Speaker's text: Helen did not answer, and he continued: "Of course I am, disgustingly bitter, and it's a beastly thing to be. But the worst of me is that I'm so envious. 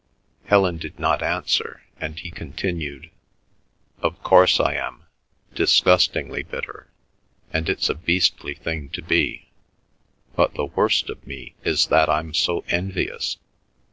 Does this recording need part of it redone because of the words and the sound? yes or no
no